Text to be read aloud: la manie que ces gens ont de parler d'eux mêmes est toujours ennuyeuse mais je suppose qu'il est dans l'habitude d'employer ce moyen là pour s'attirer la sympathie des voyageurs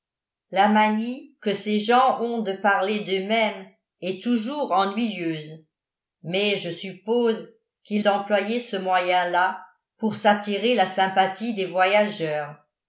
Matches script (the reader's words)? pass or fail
fail